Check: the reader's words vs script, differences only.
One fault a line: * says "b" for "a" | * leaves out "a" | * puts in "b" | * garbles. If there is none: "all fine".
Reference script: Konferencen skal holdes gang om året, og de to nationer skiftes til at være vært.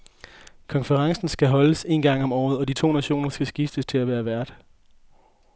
* puts in "en"
* puts in "skal"